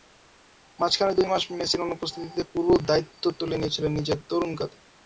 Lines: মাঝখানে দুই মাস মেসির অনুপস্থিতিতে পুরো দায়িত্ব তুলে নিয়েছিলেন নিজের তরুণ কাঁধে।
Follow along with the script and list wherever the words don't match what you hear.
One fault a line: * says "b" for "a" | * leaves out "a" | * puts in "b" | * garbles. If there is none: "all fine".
all fine